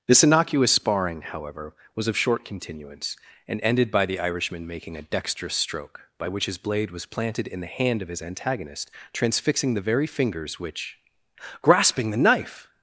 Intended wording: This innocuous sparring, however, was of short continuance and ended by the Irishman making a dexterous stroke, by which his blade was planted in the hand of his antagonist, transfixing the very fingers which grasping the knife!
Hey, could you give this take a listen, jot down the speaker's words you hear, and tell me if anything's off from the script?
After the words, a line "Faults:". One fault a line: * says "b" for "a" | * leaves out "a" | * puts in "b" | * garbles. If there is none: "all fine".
This innocuous sparring, however, was of short continuance and ended by the Irishman making a dexterous stroke, by which his blade was planted in the hand of his antagonist, transfixing the very fingers which grasping the knife!
Faults:
all fine